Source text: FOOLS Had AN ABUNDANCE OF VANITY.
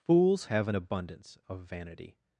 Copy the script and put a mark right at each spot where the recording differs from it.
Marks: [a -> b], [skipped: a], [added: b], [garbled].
FOOLS [Had -> HAVE] AN ABUNDANCE OF VANITY.